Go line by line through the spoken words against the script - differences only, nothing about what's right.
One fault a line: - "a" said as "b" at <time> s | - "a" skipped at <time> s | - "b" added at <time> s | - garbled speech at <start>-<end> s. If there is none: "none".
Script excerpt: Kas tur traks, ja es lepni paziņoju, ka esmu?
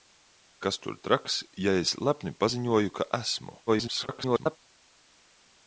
- garbled speech at 3.7-4.6 s